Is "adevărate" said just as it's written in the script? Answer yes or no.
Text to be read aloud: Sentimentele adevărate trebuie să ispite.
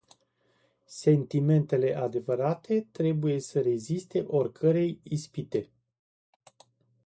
yes